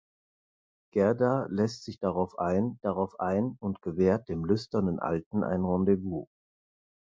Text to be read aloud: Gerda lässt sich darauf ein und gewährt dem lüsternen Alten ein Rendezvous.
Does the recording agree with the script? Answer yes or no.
no